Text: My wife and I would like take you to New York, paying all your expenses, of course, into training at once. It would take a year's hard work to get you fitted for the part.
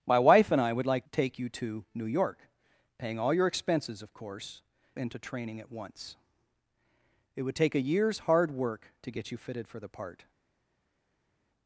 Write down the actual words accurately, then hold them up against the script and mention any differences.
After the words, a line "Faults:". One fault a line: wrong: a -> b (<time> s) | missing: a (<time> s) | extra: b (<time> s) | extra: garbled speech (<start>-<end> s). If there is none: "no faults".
My wife and I would like take you to New York, paying all your expenses, of course, into training at once. It would take a year's hard work to get you fitted for the part.
Faults:
no faults